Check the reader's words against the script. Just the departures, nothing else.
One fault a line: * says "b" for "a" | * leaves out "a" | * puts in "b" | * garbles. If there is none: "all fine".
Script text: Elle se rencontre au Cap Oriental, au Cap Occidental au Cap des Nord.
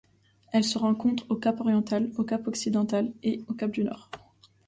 * puts in "et"
* says "du" for "des"